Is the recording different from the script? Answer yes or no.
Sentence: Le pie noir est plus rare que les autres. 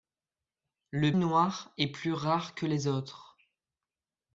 yes